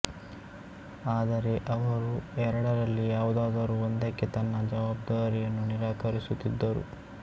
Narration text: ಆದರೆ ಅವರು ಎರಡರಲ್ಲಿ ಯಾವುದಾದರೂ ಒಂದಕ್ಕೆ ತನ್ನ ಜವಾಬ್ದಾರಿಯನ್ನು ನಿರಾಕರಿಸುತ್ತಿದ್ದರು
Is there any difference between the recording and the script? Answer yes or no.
no